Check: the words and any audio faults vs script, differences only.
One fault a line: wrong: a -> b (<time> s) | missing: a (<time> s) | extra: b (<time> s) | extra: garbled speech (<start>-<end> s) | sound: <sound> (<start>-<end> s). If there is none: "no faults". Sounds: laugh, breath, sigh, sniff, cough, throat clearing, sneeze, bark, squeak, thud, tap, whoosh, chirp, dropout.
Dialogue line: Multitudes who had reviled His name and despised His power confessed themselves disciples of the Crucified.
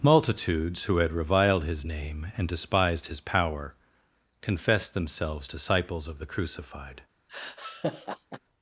sound: laugh (7.3-8.4 s)